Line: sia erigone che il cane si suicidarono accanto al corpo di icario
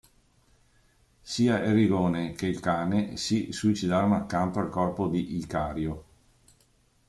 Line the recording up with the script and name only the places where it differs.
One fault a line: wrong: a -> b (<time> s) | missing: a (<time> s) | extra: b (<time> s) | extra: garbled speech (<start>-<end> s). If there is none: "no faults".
no faults